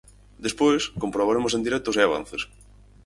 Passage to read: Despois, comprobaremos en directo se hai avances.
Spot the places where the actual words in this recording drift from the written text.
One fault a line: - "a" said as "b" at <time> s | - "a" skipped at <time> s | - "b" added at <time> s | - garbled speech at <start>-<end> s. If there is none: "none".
none